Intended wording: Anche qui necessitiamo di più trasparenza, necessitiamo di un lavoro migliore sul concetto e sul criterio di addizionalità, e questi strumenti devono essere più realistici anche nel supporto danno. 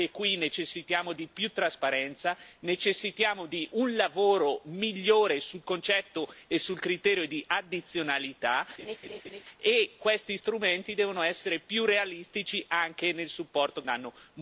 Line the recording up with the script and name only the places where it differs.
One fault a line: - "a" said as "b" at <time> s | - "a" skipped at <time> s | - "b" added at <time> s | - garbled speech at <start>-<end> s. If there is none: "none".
none